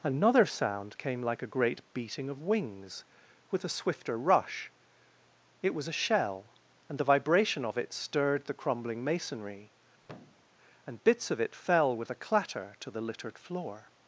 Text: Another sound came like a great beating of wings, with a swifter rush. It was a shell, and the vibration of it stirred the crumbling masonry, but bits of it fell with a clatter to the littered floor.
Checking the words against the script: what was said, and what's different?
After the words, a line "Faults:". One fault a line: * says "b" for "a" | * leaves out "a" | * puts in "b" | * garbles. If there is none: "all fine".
Another sound came like a great beating of wings, with a swifter rush. It was a shell, and the vibration of it stirred the crumbling masonry, and bits of it fell with a clatter to the littered floor.
Faults:
* says "and" for "but"